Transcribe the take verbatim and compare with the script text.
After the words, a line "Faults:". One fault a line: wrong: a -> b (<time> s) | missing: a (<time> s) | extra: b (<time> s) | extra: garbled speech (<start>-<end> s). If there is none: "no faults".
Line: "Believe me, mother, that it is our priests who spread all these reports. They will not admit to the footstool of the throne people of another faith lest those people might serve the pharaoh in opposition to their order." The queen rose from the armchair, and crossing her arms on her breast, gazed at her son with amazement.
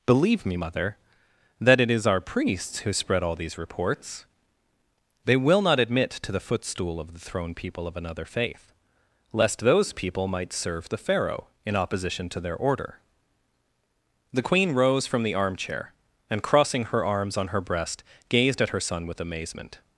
"Believe me, mother, that it is our priests who spread all these reports. They will not admit to the footstool of the throne people of another faith lest those people might serve the pharaoh in opposition to their order." The queen rose from the armchair, and crossing her arms on her breast, gazed at her son with amazement.
Faults:
no faults